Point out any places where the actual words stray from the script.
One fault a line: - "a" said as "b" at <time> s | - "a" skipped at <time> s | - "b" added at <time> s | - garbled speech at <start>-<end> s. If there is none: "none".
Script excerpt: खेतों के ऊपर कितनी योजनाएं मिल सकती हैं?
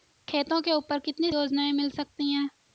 none